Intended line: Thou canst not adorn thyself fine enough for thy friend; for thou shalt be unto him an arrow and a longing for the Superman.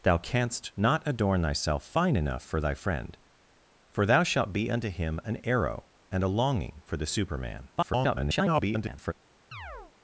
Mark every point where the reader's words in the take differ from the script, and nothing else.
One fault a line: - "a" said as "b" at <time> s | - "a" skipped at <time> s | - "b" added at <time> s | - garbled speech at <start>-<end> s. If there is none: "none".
- garbled speech at 7.8-9.1 s